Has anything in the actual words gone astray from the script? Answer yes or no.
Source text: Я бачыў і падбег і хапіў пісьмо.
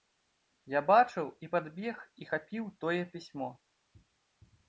yes